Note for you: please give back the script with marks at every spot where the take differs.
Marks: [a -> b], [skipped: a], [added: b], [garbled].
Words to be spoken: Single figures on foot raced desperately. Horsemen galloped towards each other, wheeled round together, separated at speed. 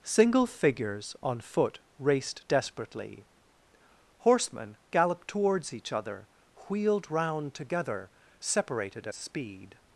Single figures on foot raced desperately. Horsemen galloped towards each other, wheeled round together, separated [skipped: at] speed.